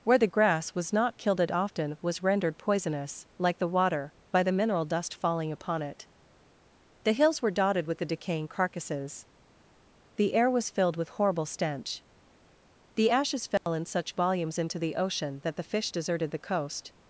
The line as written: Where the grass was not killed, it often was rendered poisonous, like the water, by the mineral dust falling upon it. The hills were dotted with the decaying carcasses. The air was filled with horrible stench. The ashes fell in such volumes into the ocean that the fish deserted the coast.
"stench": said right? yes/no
yes